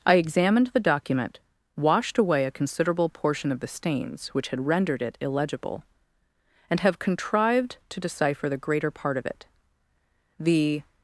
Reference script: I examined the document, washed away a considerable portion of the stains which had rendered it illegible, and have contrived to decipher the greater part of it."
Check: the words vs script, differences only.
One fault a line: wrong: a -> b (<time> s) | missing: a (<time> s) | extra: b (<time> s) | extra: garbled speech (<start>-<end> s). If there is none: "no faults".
extra: The (10.4 s)